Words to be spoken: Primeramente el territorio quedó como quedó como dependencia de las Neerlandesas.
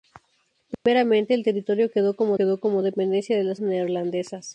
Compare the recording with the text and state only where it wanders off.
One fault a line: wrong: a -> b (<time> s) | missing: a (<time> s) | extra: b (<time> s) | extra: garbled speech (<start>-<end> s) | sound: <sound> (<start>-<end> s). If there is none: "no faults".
sound: dropout (0.7-0.9 s)